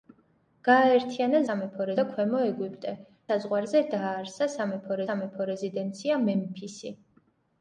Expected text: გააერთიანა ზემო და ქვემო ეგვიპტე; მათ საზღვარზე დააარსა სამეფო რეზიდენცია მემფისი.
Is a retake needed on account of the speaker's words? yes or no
yes